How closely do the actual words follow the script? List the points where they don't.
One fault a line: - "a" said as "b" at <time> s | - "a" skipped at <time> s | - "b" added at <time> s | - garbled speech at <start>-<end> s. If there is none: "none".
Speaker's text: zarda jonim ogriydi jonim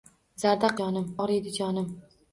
none